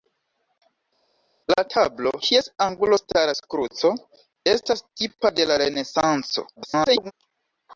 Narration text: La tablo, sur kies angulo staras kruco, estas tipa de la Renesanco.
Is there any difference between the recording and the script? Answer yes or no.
yes